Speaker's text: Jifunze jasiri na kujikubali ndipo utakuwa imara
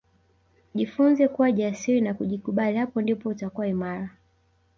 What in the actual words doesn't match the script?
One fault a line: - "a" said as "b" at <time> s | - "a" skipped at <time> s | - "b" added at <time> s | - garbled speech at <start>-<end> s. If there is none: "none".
- "kuwa" added at 1.3 s
- "hapo" added at 2.8 s